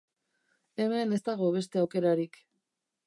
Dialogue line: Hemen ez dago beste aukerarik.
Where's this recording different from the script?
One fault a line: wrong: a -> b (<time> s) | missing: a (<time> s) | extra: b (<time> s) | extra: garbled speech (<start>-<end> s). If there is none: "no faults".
no faults